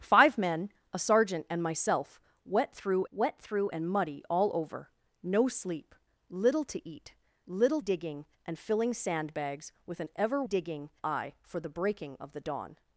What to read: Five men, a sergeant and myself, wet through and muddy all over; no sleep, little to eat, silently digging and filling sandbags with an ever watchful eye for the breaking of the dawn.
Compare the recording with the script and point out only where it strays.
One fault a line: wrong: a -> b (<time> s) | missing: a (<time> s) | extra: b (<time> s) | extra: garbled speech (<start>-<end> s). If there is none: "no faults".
extra: wet through (3.1 s)
wrong: silently -> little (7.5 s)
wrong: watchful -> digging (10.4 s)